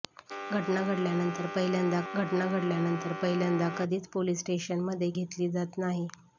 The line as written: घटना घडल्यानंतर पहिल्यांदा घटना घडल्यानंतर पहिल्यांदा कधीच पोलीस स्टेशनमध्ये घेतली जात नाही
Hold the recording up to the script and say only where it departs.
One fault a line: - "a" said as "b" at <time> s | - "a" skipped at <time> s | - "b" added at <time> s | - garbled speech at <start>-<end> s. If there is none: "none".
none